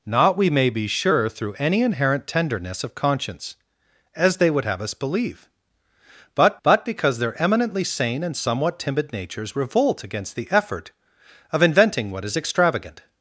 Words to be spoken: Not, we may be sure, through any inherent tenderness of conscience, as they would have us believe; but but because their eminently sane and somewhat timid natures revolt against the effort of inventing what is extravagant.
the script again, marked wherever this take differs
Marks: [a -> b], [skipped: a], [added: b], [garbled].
Not, we may be sure, through any inherent tenderness of conscience, as they would have us believe; but but because their eminently sane and somewhat timid natures revolt against the effort of inventing what is extravagant.